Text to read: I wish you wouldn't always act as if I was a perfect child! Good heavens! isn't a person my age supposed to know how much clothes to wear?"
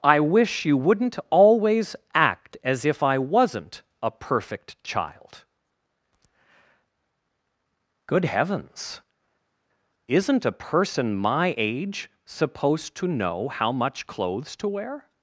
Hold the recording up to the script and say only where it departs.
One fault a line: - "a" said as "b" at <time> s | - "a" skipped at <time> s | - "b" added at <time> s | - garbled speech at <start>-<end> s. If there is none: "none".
- "was" said as "wasn't" at 3.2 s